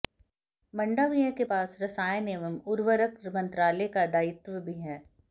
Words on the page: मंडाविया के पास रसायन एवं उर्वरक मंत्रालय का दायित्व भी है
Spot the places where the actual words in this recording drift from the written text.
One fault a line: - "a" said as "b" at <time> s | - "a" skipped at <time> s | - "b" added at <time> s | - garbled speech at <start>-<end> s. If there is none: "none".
none